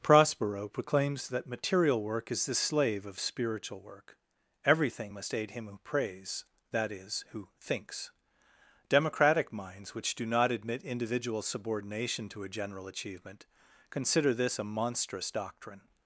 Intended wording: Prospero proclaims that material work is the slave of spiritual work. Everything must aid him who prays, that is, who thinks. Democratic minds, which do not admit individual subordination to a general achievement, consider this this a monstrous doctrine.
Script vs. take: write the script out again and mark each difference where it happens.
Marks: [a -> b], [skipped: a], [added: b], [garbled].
Prospero proclaims that material work is the slave of spiritual work. Everything must aid him who prays, that is, who thinks. Democratic minds, which do not admit individual subordination to a general achievement, consider this [skipped: this] a monstrous doctrine.